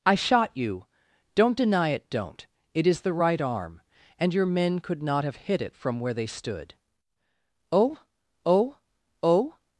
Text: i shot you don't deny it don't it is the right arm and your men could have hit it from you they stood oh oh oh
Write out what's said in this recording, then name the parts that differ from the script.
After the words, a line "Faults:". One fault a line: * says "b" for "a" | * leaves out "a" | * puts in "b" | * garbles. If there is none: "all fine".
i shot you don't deny it don't it is the right arm and your men could not have hit it from where they stood oh oh oh
Faults:
* puts in "not"
* says "where" for "you"